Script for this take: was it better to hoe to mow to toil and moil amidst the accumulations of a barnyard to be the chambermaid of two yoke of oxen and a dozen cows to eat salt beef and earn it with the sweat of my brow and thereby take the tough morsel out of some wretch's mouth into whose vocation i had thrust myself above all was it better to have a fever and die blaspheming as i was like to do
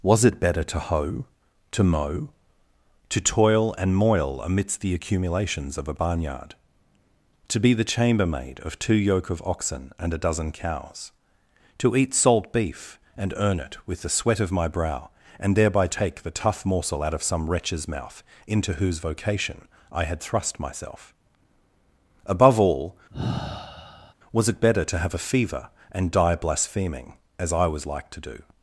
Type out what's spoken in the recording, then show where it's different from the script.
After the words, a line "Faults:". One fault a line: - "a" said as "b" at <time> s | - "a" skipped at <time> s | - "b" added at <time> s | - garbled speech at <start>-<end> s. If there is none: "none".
was it better to hoe to mow to toil and moil amidst the accumulations of a barnyard to be the chambermaid of two yoke of oxen and a dozen cows to eat salt beef and earn it with the sweat of my brow and thereby take the tough morsel out of some wretch's mouth into whose vocation i had thrust myself above all was it better to have a fever and die blaspheming as i was like to do
Faults:
none